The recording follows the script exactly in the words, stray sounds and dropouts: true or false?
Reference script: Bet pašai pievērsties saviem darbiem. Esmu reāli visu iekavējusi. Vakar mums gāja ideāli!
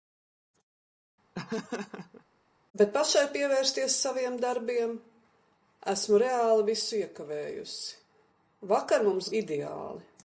false